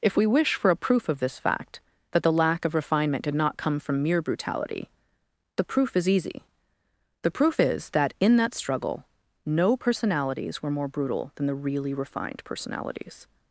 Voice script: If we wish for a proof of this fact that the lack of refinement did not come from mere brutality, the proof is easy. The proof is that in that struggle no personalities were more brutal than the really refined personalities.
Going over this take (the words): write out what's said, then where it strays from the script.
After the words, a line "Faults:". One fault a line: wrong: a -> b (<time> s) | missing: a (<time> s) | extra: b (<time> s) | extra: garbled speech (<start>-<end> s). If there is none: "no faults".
If we wish for a proof of this fact that the lack of refinement did not come from mere brutality, the proof is easy. The proof is that in that struggle no personalities were more brutal than the really refined personalities.
Faults:
no faults